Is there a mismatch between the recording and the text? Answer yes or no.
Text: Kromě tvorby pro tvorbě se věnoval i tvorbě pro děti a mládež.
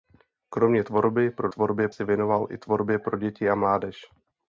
no